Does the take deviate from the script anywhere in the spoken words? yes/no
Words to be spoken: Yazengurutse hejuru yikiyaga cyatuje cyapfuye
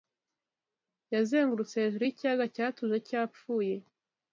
no